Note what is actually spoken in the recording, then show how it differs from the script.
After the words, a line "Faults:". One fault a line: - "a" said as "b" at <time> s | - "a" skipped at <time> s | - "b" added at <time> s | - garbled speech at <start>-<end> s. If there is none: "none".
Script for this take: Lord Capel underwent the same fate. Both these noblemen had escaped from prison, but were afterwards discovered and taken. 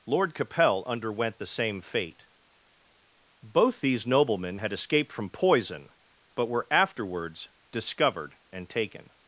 Lord Capel underwent the same fate. Both these noblemen had escaped from poison, but were afterwards discovered and taken.
Faults:
- "prison" said as "poison" at 5.3 s